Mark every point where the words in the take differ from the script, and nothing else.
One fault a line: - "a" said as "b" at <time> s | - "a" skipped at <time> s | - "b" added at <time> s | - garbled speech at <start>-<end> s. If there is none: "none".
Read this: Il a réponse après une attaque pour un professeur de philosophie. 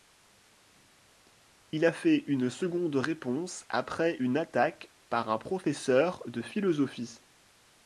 - "fait une seconde" added at 1.9 s
- "pour" said as "par" at 5.1 s